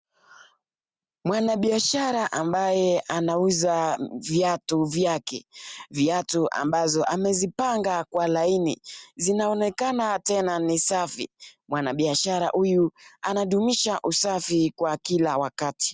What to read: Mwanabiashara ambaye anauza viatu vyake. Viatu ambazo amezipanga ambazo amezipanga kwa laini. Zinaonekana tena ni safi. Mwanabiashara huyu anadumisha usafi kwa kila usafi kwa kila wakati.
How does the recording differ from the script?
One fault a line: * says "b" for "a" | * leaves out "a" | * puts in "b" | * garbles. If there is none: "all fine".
* leaves out "ambazo amezipanga"
* leaves out "usafi kwa kila"